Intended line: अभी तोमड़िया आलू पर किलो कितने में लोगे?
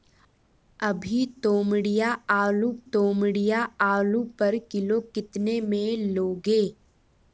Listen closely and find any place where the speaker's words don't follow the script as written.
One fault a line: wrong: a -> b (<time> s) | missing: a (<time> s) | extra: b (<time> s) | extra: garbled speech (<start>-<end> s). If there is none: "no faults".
extra: तोमड़िया आलू (2.9 s)